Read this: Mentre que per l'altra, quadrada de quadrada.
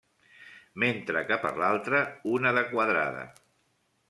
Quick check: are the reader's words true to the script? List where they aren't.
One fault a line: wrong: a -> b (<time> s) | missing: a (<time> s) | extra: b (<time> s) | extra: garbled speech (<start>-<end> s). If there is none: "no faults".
wrong: quadrada -> una (2.4 s)